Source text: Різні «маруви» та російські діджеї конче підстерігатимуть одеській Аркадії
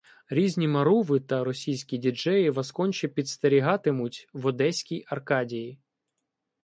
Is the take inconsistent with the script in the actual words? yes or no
yes